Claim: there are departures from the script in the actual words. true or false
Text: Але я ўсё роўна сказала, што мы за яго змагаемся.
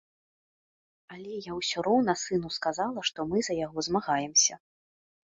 true